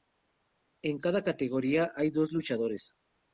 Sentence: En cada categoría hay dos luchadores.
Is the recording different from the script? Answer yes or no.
no